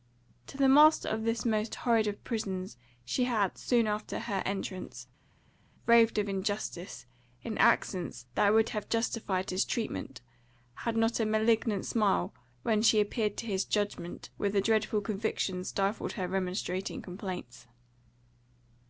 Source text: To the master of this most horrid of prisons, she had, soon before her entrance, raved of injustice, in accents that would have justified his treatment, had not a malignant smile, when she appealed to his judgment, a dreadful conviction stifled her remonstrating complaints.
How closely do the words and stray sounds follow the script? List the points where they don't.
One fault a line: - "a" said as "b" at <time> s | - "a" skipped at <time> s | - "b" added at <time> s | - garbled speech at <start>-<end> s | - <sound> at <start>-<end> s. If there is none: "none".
- "before" said as "after" at 3.9 s
- "with" added at 14.4 s